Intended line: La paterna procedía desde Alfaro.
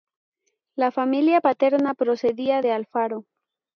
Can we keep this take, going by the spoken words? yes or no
no